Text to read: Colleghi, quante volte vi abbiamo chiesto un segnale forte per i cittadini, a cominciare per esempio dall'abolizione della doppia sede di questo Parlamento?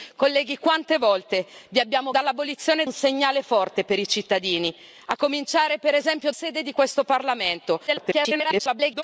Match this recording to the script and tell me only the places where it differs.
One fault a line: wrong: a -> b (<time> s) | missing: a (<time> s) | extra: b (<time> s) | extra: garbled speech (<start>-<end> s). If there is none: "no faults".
wrong: chiesto -> dall'abolizione (2.1 s)
missing: dall'abolizione della doppia (6.3 s)
extra: garbled speech (7.9-9.0 s)